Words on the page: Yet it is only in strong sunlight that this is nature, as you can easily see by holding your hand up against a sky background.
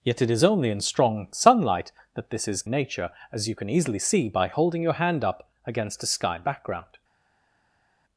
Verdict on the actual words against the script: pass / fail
pass